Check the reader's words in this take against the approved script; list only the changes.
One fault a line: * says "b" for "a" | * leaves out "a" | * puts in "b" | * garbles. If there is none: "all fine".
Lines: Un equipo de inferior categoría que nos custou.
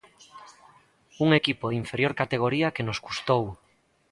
all fine